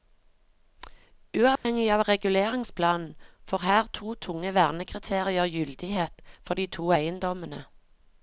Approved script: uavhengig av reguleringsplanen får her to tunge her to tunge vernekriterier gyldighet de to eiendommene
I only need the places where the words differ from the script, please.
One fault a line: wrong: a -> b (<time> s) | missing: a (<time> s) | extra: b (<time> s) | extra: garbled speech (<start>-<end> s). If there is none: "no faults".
missing: her to tunge (4.5 s)
extra: for (6.5 s)